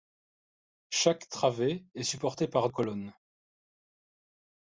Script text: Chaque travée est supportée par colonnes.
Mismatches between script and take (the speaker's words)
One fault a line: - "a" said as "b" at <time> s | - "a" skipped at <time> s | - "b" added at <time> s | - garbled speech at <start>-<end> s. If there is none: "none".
none